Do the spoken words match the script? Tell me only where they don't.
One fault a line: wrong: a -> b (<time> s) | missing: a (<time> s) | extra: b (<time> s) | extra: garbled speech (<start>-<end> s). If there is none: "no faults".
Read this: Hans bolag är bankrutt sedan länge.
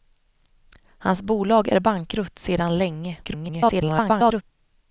extra: garbled speech (3.2-4.4 s)